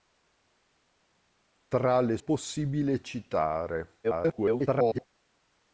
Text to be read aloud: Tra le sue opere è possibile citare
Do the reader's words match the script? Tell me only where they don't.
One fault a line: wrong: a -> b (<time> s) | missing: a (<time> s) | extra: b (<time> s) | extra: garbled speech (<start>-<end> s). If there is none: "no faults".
missing: sue opere è (2.2 s)
extra: garbled speech (4.0-5.1 s)